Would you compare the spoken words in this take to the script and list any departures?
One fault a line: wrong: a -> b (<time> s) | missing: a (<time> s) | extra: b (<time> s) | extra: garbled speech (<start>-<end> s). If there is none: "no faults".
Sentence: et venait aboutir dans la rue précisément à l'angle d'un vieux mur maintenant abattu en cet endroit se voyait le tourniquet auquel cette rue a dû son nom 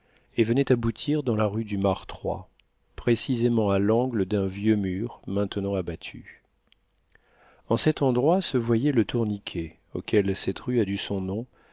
extra: du martroi (1.6 s)